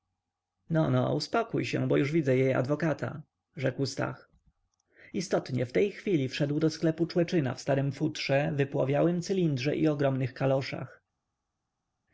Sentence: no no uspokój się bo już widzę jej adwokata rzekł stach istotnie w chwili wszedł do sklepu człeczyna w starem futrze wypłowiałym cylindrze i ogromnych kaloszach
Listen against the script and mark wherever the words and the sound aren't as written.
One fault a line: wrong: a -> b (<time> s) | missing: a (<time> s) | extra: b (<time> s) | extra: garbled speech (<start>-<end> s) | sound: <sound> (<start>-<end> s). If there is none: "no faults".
extra: tej (5.7 s)